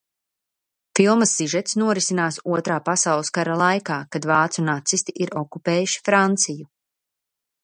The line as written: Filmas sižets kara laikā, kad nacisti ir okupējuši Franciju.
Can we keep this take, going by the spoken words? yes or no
no